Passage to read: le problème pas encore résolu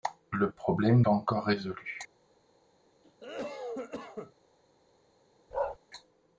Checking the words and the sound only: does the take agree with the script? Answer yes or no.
no